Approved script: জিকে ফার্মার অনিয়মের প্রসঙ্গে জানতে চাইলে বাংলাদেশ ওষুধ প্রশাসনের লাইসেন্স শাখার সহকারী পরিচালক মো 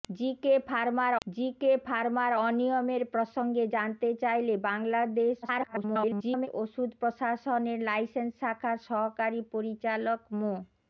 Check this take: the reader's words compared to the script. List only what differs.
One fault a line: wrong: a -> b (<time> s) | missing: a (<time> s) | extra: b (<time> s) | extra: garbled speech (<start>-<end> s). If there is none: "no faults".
extra: জিকে ফার্মার (1.3 s)
extra: garbled speech (5.4-6.5 s)